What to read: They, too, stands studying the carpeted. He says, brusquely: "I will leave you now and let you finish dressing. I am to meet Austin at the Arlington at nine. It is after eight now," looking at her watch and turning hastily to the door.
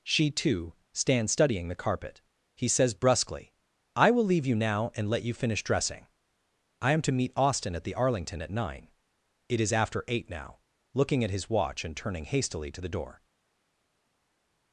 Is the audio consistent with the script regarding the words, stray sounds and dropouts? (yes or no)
no